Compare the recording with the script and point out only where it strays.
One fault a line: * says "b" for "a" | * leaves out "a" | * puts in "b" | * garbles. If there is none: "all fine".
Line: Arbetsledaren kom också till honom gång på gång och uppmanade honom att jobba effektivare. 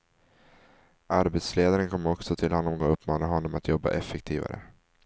* leaves out "gång på gång"